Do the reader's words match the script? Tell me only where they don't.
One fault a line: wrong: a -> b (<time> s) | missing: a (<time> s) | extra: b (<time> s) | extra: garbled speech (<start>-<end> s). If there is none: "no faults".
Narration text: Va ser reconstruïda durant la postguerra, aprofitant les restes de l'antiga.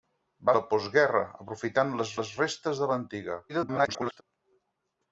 missing: ser reconstruïda durant (0.5 s)
extra: les (2.2 s)
extra: garbled speech (3.5-4.2 s)